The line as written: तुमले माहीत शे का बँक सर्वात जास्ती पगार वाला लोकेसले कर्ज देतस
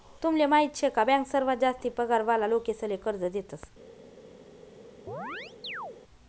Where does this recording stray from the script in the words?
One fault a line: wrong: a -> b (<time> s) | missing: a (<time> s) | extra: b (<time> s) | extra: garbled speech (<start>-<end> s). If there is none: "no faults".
no faults